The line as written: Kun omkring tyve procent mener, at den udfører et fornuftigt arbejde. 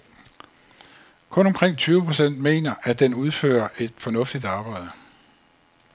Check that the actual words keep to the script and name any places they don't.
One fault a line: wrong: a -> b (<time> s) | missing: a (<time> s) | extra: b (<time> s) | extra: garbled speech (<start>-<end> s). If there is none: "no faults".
no faults